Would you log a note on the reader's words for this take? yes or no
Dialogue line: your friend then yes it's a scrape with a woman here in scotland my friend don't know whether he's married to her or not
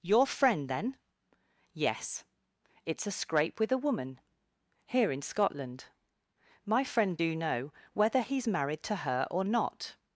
yes